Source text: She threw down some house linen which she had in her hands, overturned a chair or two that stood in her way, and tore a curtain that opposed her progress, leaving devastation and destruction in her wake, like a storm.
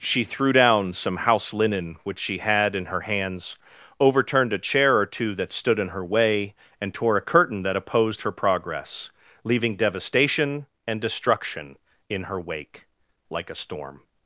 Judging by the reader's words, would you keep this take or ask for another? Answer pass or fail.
pass